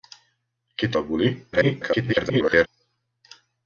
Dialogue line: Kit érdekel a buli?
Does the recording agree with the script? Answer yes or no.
no